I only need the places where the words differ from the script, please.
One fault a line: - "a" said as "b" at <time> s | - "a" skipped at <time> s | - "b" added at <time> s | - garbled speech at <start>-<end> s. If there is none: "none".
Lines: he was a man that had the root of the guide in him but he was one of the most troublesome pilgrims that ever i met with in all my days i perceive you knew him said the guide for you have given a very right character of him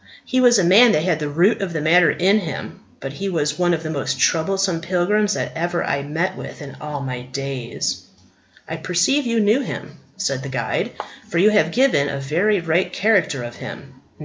- "guide" said as "matter" at 1.8 s